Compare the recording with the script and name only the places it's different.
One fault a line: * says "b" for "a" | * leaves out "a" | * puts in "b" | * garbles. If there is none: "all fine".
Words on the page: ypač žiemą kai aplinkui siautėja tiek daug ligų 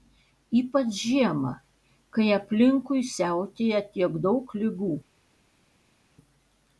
all fine